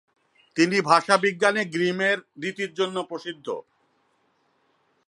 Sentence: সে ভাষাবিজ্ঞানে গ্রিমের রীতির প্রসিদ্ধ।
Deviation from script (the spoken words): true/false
true